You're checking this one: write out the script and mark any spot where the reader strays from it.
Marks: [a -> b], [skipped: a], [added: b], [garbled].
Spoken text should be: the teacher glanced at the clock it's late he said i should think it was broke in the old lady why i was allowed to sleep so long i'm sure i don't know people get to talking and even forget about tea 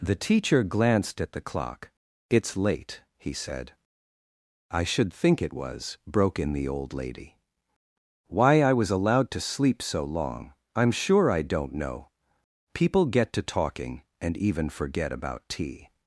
the teacher glanced at the clock it's late he said i should think it was broke in the old lady why i was allowed to sleep so long i'm sure i don't know people get to talking and even forget about tea